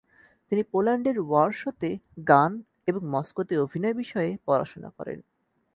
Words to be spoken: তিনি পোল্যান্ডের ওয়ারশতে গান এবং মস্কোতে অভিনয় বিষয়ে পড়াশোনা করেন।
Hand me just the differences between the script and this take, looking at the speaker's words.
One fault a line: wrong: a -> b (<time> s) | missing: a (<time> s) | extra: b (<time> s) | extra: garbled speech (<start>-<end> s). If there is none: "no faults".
no faults